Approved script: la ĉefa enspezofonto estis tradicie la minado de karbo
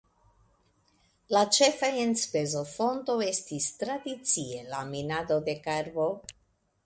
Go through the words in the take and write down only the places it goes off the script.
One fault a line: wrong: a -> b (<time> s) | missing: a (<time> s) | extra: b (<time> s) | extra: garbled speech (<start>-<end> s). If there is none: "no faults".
no faults